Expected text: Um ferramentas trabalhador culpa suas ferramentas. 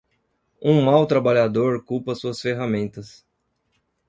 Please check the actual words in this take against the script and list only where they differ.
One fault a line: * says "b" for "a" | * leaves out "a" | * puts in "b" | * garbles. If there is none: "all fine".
* says "mau" for "ferramentas"